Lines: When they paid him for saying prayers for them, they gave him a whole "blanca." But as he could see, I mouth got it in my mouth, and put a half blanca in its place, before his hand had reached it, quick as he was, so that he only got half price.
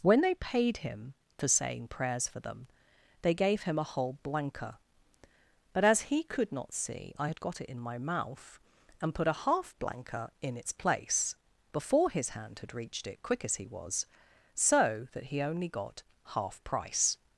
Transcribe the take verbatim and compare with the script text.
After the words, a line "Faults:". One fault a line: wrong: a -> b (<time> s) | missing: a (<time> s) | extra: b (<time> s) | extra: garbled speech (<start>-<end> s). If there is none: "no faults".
When they paid him for saying prayers for them, they gave him a whole "blanca." But as he could not see, I had got it in my mouth, and put a half blanca in its place, before his hand had reached it, quick as he was, so that he only got half price.
Faults:
extra: not (6.5 s)
wrong: mouth -> had (7.3 s)